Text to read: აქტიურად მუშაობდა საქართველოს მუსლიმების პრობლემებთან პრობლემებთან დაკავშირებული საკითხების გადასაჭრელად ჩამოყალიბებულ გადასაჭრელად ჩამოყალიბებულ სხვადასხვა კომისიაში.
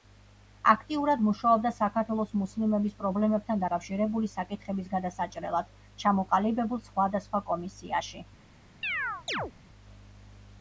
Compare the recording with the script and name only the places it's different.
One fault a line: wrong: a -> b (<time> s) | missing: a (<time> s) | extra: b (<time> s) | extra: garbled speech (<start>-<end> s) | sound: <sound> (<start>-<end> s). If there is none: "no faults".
missing: პრობლემებთან (3.7 s)
missing: გადასაჭრელად ჩამოყალიბებულ (6.9 s)
sound: chirp (8.8-9.5 s)